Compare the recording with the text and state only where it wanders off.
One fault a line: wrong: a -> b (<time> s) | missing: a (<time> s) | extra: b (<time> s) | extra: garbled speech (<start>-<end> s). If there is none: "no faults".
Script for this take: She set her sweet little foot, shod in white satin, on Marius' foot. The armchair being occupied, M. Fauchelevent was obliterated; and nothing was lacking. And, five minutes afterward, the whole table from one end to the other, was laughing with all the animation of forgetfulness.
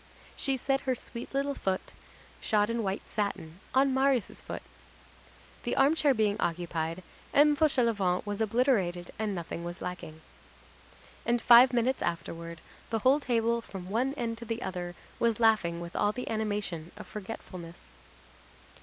no faults